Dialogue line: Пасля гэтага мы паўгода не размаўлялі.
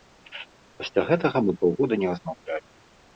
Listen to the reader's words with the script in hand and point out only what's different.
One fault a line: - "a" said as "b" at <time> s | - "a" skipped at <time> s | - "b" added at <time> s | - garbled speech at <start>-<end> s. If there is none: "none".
none